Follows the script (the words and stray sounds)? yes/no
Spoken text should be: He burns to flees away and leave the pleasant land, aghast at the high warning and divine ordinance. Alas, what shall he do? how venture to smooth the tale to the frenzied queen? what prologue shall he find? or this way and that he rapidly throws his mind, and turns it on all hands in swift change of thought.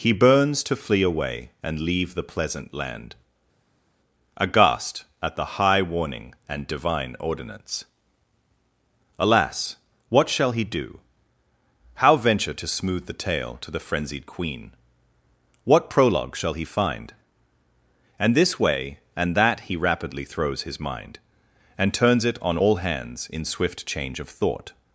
no